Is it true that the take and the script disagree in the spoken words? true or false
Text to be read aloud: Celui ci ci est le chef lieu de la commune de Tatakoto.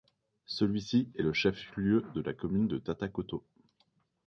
true